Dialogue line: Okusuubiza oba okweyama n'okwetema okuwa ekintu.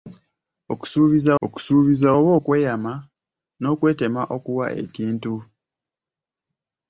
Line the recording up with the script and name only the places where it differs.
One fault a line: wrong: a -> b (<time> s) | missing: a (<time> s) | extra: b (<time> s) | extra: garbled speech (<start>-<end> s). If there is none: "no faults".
extra: okusuubiza (1.5 s)